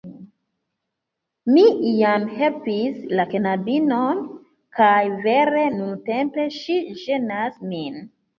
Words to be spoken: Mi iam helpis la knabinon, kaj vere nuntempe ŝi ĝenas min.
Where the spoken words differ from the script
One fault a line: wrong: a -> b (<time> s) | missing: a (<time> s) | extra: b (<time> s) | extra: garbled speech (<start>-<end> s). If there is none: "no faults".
no faults